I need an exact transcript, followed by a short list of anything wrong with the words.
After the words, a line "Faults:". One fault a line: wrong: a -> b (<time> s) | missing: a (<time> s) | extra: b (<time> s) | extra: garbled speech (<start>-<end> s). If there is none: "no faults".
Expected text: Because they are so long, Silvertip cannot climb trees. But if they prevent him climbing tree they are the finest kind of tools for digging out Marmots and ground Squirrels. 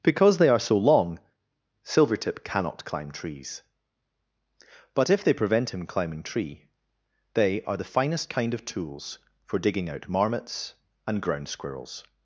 Because they are so long, Silvertip cannot climb trees. But if they prevent him climbing tree they are the finest kind of tools for digging out Marmots and ground Squirrels.
Faults:
no faults